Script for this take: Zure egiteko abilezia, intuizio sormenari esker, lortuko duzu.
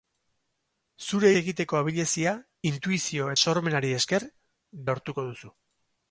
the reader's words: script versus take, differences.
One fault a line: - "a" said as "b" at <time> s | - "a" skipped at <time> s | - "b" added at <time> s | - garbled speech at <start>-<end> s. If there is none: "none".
none